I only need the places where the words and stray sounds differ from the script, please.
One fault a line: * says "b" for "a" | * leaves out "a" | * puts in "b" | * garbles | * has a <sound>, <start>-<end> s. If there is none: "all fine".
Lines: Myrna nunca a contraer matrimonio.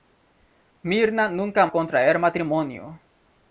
all fine